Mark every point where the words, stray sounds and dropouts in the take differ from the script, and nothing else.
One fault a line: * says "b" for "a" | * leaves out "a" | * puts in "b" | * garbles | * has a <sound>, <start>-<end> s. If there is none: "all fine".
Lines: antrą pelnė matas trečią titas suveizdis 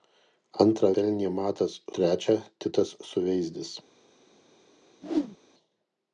* has a whoosh, 5.0-5.4 s